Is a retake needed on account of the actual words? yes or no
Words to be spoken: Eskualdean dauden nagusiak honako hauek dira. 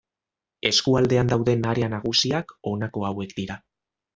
yes